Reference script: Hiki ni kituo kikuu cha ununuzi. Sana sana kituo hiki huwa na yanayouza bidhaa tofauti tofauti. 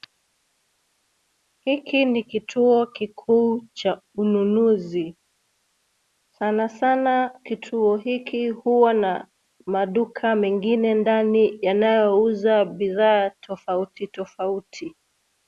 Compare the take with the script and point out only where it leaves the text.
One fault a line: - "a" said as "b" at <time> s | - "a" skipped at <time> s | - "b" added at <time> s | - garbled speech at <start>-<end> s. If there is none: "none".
- "maduka mengine ndani" added at 9.7 s